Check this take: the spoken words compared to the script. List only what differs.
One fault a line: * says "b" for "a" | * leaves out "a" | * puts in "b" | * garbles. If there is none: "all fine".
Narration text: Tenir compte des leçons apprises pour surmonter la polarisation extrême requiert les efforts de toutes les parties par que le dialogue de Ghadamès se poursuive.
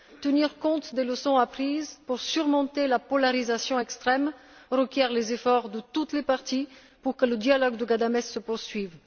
* says "pour" for "par"